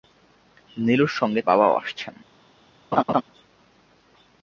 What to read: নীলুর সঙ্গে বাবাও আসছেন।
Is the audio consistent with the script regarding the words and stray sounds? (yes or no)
no